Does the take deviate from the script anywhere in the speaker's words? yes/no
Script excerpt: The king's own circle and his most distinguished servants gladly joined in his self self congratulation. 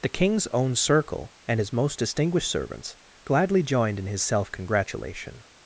yes